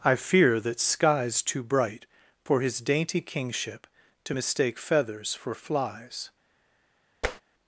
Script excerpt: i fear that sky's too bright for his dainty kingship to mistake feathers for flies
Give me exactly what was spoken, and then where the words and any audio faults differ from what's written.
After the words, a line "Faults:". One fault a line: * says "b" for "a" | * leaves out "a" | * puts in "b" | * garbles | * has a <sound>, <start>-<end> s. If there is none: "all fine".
i fear that sky's too bright for his dainty kingship to mistake feathers for flies
Faults:
* has a tap, 7.2-7.4 s